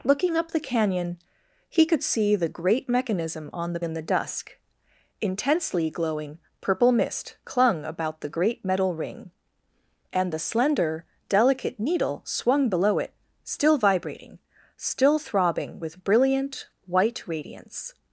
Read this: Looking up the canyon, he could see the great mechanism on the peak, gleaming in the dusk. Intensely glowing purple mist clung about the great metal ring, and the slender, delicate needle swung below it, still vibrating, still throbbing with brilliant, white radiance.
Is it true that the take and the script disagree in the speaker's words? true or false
true